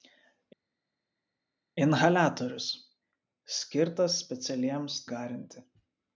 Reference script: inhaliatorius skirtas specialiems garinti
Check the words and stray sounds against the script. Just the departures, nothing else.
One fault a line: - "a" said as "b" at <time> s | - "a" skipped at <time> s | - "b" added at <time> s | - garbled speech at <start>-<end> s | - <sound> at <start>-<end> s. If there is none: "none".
none